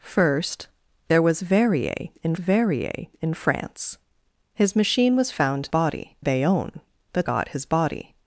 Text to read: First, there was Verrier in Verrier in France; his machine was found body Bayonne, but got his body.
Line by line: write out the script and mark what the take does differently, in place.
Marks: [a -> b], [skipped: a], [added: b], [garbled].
First, there was Verrier in Verrier in France; his machine was found body Bayonne, but got his body.